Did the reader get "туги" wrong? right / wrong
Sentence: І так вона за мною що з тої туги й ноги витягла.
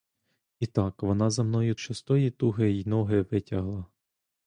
right